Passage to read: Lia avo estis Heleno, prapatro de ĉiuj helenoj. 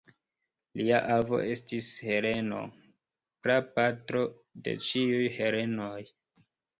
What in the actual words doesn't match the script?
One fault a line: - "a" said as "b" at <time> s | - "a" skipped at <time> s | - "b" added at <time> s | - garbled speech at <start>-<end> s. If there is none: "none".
none